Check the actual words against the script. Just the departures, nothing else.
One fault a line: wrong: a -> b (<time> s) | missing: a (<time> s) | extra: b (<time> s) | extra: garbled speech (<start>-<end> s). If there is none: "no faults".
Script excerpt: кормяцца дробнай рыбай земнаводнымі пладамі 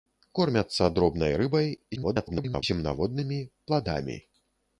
extra: garbled speech (2.0-2.6 s)